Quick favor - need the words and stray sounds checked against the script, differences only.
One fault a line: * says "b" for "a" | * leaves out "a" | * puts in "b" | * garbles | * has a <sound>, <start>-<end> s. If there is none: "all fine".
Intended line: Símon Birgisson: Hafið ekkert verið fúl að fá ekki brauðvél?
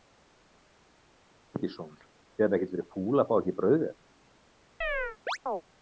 * puts in "Þið"
* has a chirp, 4.8-5.6 s